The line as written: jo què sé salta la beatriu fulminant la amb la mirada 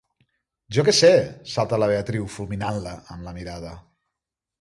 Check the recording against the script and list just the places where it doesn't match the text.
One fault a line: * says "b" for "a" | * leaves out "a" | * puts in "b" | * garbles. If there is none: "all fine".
all fine